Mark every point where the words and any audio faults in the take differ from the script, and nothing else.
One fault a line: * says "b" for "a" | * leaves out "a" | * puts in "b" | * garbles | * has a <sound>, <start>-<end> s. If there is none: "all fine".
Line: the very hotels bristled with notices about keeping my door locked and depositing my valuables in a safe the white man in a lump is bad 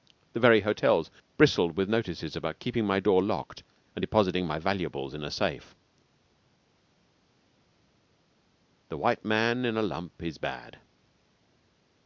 all fine